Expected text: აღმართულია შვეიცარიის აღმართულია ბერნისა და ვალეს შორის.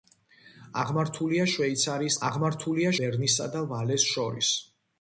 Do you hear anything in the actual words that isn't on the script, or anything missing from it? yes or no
no